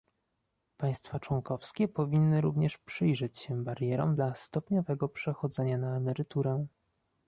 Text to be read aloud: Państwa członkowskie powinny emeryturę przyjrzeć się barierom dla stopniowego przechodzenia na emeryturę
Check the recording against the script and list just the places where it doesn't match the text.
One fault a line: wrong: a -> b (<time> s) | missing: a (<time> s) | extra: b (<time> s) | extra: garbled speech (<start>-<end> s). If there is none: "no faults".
wrong: emeryturę -> również (2.4 s)